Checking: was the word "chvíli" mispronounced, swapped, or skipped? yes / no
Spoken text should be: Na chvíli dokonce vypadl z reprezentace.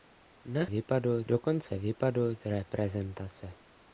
yes